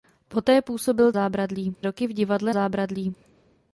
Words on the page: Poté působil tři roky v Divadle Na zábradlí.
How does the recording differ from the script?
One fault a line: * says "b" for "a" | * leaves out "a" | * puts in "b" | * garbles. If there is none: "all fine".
* says "zábradlí" for "tři"
* leaves out "Na"